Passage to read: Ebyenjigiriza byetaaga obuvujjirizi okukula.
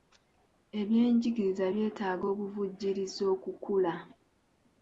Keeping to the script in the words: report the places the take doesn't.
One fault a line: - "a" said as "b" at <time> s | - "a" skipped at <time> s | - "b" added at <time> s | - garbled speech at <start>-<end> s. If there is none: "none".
none